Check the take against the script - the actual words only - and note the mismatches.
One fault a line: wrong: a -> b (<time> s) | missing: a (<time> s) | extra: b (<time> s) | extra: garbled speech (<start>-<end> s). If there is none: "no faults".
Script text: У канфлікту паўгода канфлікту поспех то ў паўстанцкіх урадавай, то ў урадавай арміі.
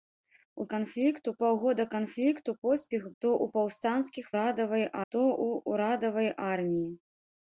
no faults